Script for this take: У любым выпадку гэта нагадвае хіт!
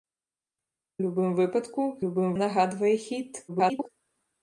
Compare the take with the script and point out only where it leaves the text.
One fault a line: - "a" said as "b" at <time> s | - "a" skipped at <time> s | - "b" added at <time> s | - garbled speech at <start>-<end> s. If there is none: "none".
- "гэта" said as "любым" at 2.0 s
- garbled speech at 3.5-3.9 s